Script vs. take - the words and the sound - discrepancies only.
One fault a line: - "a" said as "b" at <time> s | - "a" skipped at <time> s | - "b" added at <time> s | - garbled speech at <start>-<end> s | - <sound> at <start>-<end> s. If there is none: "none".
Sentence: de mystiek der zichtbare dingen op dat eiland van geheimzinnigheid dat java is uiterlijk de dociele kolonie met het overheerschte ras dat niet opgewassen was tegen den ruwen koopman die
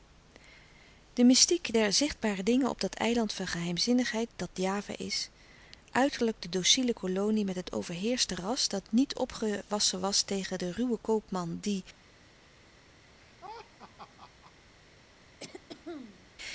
- laugh at 13.1-14.5 s
- throat clearing at 15.4-16.4 s